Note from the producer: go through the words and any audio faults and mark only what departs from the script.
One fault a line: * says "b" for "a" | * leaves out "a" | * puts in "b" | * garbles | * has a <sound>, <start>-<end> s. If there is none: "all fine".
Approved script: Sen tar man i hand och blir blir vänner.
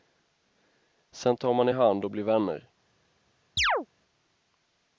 * leaves out "blir"
* has a chirp, 3.6-3.9 s